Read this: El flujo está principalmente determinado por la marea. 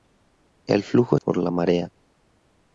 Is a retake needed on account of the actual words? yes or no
yes